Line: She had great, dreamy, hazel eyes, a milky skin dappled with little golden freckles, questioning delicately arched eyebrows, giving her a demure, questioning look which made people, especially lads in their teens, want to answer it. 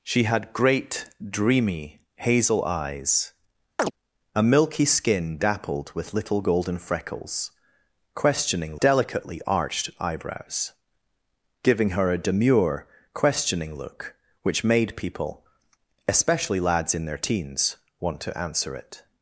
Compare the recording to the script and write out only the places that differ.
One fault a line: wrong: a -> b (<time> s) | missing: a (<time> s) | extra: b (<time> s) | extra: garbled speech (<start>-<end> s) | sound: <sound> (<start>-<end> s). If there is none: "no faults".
sound: chirp (3.8-3.9 s)